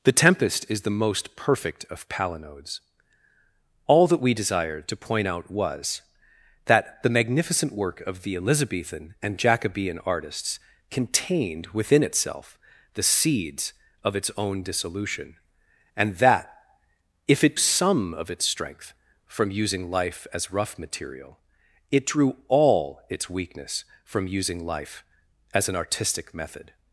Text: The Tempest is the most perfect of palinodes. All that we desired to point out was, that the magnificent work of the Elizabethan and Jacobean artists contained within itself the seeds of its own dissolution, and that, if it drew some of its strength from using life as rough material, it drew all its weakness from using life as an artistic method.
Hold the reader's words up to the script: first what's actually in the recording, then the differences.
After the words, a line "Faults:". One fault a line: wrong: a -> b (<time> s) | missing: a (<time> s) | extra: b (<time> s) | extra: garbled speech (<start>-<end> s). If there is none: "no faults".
The Tempest is the most perfect of palinodes. All that we desired to point out was, that the magnificent work of the Elizabethan and Jacobean artists contained within itself the seeds of its own dissolution, and that, if it some of its strength from using life as rough material, it drew all its weakness from using life as an artistic method.
Faults:
missing: drew (17.6 s)